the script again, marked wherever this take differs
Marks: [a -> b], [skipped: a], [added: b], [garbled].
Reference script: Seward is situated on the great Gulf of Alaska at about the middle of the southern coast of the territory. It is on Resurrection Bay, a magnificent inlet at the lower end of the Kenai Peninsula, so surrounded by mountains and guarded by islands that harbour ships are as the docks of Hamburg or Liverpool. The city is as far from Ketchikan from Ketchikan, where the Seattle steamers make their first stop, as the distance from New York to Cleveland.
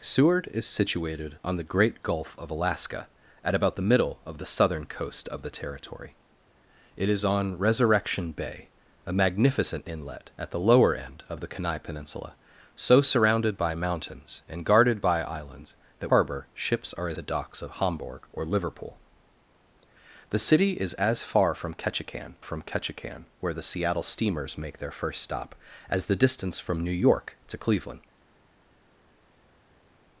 Seward is situated on the great Gulf of Alaska at about the middle of the southern coast of the territory. It is on Resurrection Bay, a magnificent inlet at the lower end of the Kenai Peninsula, so surrounded by mountains and guarded by islands that harbour ships are as the docks of Hamburg or Liverpool. The city is as far from Ketchikan from Ketchikan, where the Seattle steamers make their first stop, as the distance from New York to Cleveland.